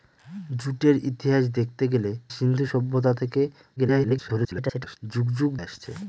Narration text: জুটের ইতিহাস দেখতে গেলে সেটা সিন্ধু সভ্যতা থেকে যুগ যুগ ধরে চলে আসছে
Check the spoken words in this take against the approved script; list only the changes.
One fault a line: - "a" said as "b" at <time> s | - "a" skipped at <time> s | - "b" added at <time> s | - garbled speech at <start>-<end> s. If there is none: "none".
- "সেটা" skipped at 2.1 s
- garbled speech at 3.8-5.0 s
- "ধরে চলে" skipped at 5.5 s